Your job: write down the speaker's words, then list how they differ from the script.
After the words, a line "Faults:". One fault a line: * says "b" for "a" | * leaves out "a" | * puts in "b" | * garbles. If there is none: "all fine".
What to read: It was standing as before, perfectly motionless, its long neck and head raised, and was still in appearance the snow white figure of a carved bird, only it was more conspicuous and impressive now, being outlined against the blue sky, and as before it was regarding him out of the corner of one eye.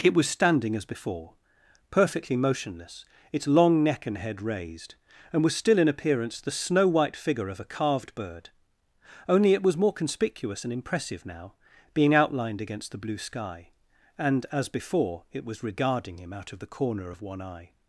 It was standing as before, perfectly motionless, its long neck and head raised, and was still in appearance the snow white figure of a carved bird, only it was more conspicuous and impressive now, being outlined against the blue sky, and as before it was regarding him out of the corner of one eye.
Faults:
all fine